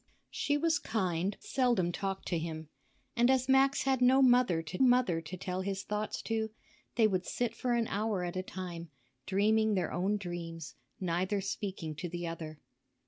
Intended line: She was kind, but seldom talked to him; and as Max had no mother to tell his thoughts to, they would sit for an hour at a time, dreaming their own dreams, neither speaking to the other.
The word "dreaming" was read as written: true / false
true